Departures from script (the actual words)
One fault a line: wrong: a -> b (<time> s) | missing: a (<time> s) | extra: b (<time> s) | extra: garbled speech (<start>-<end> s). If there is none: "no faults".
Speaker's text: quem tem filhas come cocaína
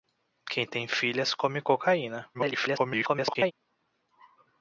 extra: garbled speech (2.3-3.5 s)